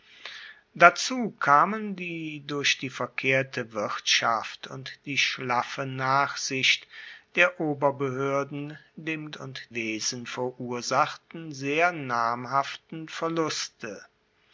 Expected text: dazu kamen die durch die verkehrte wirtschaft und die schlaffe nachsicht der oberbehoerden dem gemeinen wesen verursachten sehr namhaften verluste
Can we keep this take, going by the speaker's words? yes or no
no